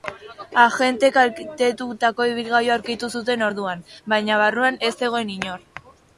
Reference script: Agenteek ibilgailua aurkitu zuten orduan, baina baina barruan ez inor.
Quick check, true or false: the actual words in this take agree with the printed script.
false